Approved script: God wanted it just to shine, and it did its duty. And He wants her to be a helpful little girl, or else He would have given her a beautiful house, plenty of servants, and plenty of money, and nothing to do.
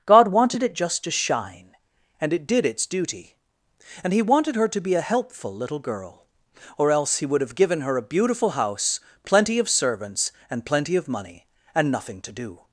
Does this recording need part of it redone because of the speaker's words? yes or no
yes